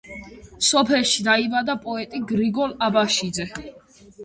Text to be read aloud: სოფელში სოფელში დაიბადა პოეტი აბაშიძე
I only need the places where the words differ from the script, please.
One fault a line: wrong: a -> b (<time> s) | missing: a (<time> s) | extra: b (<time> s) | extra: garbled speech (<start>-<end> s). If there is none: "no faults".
missing: სოფელში (1.2 s)
extra: გრიგოლ (2.3 s)